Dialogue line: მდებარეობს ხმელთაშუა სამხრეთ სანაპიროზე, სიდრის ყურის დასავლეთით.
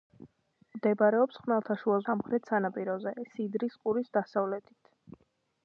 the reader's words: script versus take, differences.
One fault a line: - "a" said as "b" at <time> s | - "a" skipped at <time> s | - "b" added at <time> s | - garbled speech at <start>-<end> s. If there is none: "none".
none